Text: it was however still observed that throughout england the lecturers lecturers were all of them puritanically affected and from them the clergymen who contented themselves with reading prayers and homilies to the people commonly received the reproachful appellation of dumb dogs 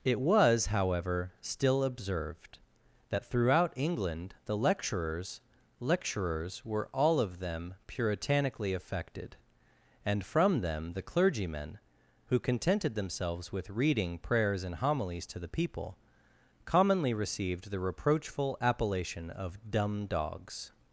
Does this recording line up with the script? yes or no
yes